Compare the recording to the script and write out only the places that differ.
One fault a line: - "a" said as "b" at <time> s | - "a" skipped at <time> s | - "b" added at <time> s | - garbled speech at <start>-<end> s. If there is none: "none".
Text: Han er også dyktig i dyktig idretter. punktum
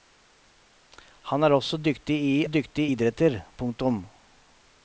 none